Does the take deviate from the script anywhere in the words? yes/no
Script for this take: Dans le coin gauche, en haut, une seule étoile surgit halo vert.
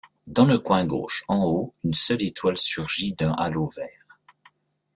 yes